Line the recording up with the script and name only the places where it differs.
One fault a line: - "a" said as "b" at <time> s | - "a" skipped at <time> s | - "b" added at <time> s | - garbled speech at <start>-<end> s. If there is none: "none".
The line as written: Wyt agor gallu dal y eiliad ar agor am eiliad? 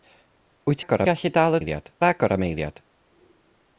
none